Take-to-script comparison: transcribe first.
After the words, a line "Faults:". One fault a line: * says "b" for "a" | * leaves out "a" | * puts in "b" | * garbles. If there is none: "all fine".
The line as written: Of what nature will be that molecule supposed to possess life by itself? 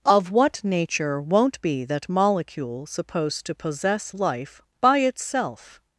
Of what nature won't be that molecule supposed to possess life by itself?
Faults:
* says "won't" for "will"